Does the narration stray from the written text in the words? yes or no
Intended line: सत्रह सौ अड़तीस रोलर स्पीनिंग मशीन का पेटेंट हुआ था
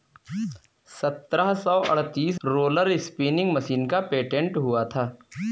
no